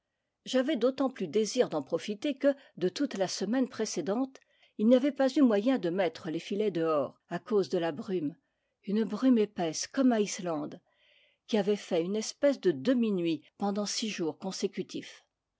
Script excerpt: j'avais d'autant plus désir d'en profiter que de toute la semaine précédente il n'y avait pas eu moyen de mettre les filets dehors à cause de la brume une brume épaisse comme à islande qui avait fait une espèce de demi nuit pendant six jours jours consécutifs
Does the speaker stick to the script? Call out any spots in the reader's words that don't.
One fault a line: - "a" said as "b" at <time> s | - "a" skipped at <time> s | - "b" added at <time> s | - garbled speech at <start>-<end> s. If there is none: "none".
- "jours" skipped at 14.4 s